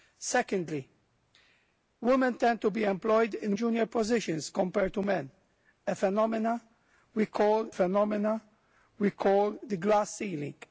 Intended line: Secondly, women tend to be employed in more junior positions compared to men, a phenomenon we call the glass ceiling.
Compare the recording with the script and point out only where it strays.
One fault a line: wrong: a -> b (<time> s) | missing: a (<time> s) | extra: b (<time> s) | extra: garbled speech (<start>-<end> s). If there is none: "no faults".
missing: more (3.6 s)
extra: phenomenon we call (7.7 s)